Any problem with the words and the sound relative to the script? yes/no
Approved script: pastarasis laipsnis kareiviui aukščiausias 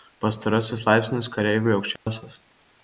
yes